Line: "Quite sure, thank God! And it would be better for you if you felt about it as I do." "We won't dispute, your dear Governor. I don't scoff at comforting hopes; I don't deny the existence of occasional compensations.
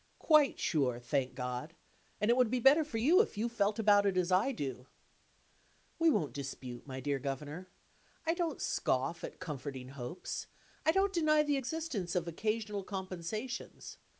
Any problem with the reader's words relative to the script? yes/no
yes